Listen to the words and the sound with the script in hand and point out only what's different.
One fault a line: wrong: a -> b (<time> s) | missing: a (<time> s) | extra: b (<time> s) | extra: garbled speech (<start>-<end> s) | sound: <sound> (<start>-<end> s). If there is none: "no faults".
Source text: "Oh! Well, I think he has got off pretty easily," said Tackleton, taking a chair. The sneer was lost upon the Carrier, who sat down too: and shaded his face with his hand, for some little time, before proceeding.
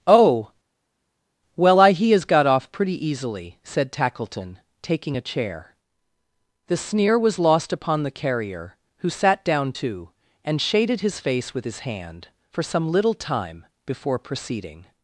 missing: think (1.9 s)